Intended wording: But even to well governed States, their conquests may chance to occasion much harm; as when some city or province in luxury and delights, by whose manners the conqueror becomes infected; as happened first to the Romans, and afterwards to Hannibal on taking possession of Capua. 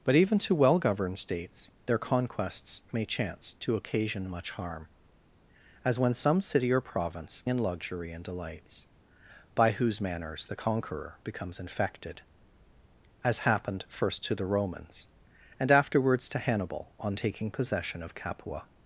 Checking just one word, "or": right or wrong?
right